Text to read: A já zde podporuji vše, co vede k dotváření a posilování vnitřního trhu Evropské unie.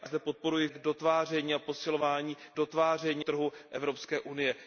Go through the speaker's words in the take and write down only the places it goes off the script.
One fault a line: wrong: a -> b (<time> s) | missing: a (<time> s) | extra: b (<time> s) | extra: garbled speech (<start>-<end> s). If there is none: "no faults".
missing: já (0.1 s)
missing: vše co vede (0.7 s)
wrong: vnitřního -> dotváření (2.5 s)